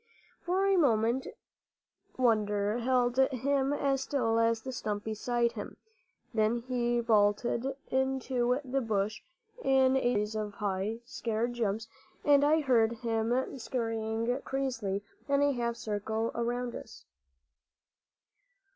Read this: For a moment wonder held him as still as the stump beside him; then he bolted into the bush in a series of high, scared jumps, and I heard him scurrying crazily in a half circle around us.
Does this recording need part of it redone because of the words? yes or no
no